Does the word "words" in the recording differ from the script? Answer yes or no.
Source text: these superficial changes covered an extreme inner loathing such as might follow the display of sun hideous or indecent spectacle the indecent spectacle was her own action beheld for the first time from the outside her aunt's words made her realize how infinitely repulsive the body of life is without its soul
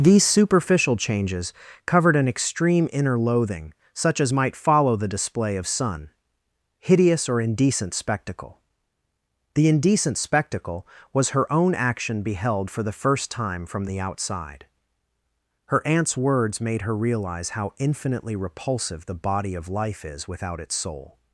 no